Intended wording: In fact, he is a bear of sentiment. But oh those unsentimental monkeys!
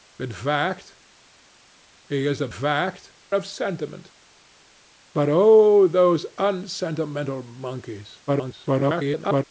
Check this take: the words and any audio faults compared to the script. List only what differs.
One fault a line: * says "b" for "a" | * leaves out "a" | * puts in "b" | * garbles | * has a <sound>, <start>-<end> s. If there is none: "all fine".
* says "fact" for "bear"
* garbles